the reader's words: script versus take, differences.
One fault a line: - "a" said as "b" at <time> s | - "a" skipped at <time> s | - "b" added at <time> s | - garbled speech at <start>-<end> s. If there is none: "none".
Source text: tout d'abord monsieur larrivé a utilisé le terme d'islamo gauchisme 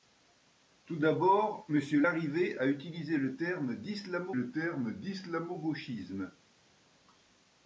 - "le terme d'islamo" added at 4.3 s